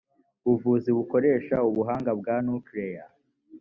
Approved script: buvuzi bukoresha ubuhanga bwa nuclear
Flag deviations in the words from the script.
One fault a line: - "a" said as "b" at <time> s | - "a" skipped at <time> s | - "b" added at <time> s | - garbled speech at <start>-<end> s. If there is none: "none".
none